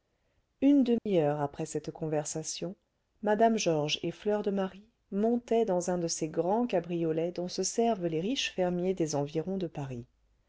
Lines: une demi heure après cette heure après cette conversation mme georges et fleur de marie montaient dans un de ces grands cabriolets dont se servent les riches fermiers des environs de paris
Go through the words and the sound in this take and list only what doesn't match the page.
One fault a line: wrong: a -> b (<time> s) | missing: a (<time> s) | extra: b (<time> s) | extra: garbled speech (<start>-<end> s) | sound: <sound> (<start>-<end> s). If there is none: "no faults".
sound: dropout (1.0-1.1 s)
missing: heure après cette (1.9 s)